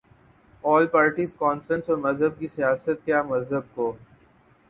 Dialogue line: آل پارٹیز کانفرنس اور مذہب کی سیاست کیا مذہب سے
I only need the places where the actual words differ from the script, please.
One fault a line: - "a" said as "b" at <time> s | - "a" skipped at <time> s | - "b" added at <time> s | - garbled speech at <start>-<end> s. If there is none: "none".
- "سے" said as "کو" at 3.7 s